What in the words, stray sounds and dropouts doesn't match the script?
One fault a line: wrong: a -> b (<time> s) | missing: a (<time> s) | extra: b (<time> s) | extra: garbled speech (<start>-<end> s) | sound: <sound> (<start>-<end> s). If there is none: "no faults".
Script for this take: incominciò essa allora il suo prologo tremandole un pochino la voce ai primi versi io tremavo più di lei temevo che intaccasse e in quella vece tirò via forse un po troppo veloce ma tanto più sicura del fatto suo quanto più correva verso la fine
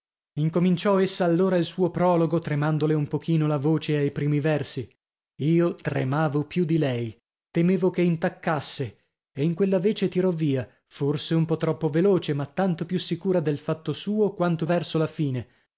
missing: più correva (14.7 s)